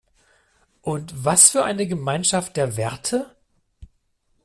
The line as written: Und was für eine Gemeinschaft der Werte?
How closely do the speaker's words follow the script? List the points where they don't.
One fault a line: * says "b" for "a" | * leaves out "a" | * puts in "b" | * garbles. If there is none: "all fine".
all fine